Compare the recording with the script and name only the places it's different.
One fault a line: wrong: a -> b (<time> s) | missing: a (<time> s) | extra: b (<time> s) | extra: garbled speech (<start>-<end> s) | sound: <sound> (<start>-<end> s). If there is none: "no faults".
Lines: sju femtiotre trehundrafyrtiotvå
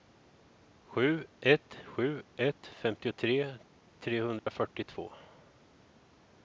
extra: ett sju ett (1.4 s)
sound: dropout (4.4-4.5 s)